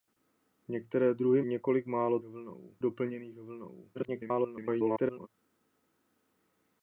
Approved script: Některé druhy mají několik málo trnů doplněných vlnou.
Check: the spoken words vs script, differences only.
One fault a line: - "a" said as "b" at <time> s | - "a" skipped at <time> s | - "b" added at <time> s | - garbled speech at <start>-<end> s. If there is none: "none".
- "mají" skipped at 1.4 s
- "trnů" said as "vlnou" at 2.2 s
- garbled speech at 3.9-5.3 s